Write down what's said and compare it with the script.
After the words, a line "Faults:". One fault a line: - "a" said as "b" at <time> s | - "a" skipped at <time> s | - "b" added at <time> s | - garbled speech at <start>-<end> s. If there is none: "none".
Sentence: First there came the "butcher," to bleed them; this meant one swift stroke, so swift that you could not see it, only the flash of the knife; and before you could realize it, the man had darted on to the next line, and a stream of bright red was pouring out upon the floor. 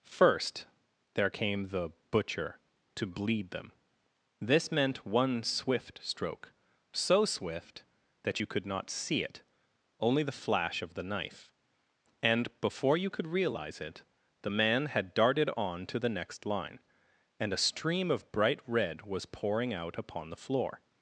First there came the "butcher," to bleed them; this meant one swift stroke, so swift that you could not see it, only the flash of the knife; and before you could realize it, the man had darted on to the next line, and a stream of bright red was pouring out upon the floor.
Faults:
none